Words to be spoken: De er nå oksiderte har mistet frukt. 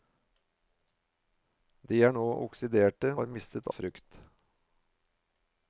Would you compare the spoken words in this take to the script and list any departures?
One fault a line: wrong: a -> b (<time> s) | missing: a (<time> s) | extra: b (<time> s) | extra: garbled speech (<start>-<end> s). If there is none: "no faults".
no faults